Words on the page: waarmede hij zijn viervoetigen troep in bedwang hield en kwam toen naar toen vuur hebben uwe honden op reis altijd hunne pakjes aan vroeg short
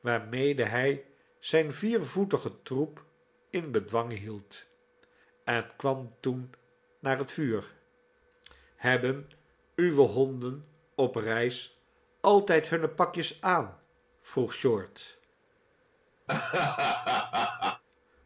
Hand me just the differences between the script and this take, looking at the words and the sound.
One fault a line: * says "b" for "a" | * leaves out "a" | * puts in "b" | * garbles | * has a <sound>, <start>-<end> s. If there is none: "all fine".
* says "het" for "toen"
* has a laugh, 16.3-17.8 s